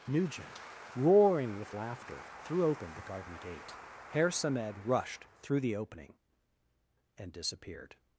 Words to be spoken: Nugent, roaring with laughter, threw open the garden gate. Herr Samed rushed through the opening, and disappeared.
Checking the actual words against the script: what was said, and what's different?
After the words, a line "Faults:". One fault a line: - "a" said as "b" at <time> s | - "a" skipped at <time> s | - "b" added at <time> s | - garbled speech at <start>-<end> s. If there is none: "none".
Nugent, roaring with laughter, threw open the garden gate. Herr Samed rushed through the opening, and disappeared.
Faults:
none